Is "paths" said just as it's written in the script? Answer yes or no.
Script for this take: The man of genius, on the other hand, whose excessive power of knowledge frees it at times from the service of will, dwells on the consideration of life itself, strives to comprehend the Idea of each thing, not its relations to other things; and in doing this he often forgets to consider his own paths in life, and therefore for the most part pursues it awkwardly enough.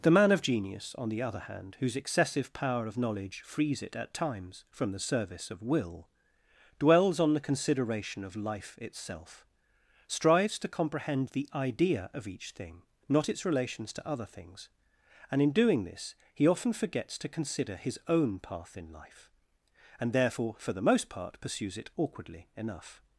no